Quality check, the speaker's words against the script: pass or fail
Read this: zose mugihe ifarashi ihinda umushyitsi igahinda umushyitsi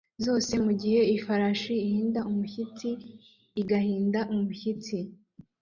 pass